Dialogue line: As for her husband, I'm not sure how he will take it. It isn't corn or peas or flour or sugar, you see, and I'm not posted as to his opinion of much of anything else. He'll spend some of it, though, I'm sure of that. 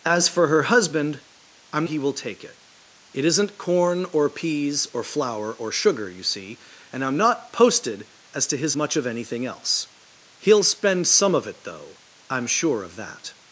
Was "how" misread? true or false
true